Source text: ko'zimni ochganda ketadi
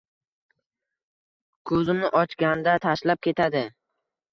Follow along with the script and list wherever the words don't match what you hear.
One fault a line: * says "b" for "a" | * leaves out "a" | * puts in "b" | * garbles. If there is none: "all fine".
* puts in "tashlab"